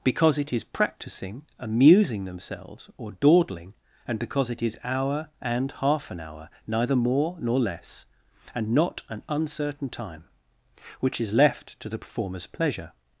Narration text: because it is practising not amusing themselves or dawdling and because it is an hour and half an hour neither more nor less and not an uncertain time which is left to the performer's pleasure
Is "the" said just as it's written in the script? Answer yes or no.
yes